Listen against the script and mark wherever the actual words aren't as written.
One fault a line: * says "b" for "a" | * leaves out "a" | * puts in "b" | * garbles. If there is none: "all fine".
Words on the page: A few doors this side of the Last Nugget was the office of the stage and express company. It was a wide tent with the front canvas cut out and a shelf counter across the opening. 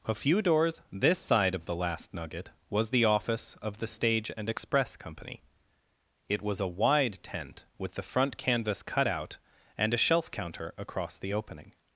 all fine